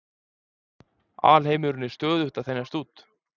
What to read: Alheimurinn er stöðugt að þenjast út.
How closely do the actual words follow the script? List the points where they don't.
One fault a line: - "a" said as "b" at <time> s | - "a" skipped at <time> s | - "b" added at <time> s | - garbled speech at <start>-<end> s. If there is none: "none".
none